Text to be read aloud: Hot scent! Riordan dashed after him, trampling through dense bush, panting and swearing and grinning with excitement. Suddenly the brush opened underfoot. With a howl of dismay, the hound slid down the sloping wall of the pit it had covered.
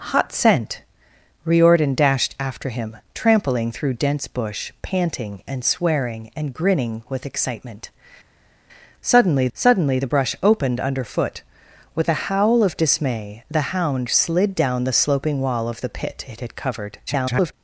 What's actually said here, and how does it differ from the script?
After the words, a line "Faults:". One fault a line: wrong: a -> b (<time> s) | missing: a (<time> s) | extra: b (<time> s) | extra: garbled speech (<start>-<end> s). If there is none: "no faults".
Hot scent! Riordan dashed after him, trampling through dense bush, panting and swearing and grinning with excitement. Suddenly suddenly the brush opened underfoot. With a howl of dismay, the hound slid down the sloping wall of the pit it had covered. [garbled]
Faults:
extra: suddenly (9.5 s)
extra: garbled speech (17.1-17.5 s)